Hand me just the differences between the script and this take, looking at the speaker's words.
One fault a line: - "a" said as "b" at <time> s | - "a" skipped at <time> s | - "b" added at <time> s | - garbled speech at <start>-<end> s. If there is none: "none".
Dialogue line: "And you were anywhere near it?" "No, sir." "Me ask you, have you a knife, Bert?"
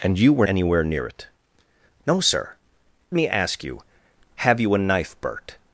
none